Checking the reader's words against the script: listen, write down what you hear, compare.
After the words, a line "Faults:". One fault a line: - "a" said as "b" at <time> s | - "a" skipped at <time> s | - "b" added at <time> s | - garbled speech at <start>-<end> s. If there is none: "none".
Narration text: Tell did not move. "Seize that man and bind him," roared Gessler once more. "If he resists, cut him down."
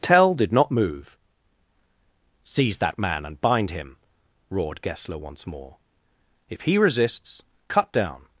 Tell did not move. "Seize that man and bind him," roared Gessler once more. "If he resists, cut down."
Faults:
- "him" skipped at 7.9 s